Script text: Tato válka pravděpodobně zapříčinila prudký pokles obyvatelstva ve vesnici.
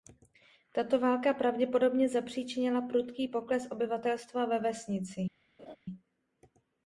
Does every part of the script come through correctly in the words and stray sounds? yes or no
no